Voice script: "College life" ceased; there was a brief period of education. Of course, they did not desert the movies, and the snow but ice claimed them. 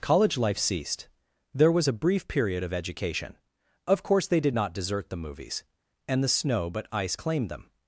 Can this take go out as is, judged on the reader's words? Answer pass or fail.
pass